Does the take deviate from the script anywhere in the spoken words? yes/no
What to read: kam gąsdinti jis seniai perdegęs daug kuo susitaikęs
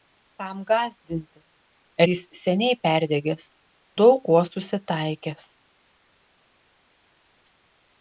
no